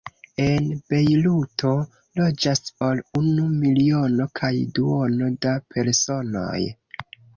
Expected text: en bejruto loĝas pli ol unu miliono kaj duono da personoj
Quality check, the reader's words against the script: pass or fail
fail